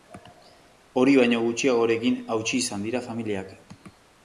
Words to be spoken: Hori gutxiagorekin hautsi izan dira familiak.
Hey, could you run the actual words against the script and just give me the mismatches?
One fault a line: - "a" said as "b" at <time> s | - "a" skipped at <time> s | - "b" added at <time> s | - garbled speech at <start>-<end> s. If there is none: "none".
- "baino" added at 1.2 s